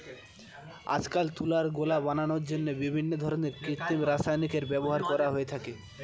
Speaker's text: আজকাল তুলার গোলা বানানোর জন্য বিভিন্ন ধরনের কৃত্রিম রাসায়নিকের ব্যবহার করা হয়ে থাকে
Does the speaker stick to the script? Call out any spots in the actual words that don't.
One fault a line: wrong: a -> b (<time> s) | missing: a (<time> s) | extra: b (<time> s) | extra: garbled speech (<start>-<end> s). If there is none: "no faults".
no faults